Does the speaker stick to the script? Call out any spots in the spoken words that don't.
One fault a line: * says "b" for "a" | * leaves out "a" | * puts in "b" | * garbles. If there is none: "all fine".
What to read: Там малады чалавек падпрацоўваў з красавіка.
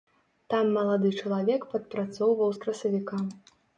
all fine